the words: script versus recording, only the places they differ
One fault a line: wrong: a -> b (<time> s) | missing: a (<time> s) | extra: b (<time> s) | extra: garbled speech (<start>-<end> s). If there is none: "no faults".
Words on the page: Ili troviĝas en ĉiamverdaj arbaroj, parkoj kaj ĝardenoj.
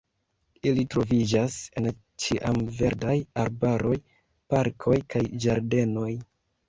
no faults